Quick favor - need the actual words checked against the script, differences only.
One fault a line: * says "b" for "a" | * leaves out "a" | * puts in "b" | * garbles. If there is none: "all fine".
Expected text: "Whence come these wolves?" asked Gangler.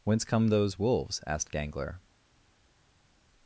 * says "those" for "these"